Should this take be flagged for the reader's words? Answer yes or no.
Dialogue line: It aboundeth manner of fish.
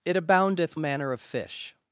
no